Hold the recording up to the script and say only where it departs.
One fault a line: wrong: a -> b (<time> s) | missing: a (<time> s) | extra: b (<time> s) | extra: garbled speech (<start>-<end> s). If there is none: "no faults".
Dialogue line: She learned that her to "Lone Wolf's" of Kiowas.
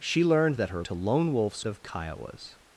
no faults